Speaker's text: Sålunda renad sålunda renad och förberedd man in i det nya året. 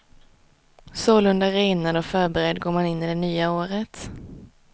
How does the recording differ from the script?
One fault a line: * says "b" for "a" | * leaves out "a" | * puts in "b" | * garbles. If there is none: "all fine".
* leaves out "sålunda renad"
* puts in "går"